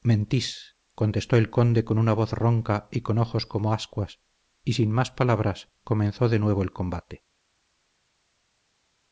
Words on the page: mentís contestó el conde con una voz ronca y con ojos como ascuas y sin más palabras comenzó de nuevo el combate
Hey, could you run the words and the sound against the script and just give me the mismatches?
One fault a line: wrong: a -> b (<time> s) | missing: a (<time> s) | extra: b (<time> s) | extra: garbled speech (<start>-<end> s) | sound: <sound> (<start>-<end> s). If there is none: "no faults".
no faults